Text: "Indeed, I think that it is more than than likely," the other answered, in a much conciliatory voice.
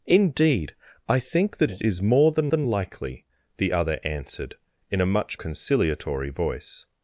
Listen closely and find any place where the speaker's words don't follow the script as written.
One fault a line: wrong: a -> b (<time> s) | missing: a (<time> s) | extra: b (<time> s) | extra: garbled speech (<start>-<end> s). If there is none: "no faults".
no faults